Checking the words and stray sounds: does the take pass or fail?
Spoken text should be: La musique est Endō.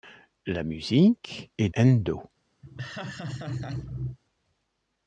fail